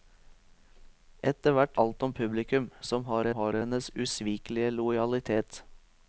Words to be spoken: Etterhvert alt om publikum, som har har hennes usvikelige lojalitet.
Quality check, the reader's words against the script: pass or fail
pass